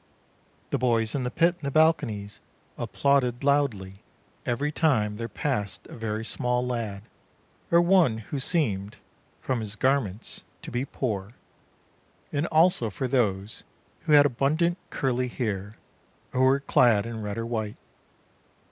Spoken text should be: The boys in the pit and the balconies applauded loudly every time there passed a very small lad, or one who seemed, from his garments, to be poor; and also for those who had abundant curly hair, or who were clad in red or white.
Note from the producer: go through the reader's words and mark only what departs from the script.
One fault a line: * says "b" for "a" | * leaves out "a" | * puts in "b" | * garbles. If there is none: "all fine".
all fine